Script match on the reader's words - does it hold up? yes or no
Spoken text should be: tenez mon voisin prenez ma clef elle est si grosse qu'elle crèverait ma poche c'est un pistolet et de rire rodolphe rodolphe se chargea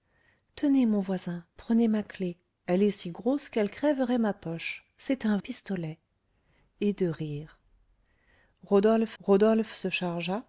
yes